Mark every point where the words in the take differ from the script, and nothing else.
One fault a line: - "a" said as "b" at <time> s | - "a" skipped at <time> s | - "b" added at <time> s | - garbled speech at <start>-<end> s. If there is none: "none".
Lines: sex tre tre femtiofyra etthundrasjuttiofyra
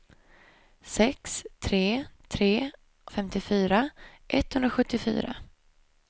none